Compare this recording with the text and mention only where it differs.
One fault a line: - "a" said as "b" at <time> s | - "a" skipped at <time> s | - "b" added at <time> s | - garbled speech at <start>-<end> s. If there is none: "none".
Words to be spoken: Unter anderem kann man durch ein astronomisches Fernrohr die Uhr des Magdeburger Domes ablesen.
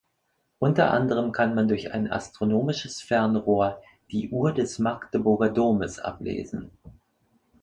none